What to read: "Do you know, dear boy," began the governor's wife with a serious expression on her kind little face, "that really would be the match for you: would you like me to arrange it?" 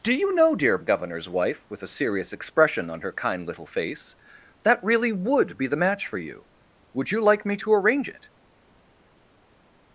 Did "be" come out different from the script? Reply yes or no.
no